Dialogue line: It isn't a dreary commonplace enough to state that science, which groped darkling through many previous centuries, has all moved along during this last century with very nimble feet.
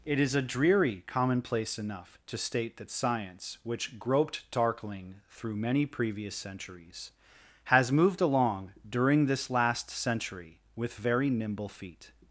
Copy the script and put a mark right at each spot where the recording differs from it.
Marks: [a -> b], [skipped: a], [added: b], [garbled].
It [isn't -> is] a dreary commonplace enough to state that science, which groped darkling through many previous centuries, has [skipped: all] moved along during this last century with very nimble feet.